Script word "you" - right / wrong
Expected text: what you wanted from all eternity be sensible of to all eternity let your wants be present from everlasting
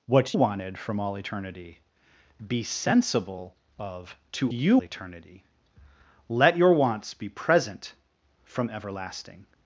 wrong